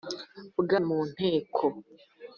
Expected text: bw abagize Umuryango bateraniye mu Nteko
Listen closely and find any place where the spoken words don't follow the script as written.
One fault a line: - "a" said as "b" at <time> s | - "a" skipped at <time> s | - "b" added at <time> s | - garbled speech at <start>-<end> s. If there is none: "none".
- "abagize Umuryango bateraniye" skipped at 0.7 s